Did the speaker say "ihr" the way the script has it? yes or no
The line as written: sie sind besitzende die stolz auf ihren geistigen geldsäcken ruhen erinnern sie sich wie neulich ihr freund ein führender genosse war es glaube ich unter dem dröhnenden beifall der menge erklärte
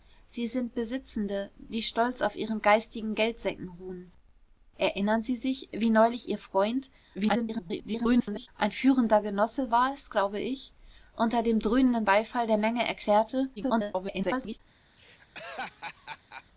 yes